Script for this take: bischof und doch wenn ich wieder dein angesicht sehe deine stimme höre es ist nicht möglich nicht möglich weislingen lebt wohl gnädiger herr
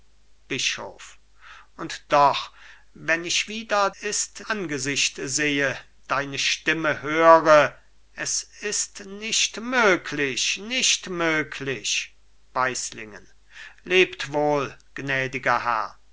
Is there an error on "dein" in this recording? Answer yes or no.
yes